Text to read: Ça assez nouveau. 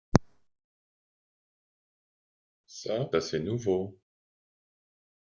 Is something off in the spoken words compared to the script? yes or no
no